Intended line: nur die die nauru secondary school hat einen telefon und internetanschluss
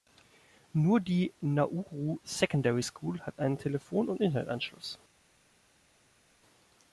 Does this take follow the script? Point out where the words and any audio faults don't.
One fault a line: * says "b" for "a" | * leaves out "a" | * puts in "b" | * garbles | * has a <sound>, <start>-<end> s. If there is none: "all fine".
* leaves out "die"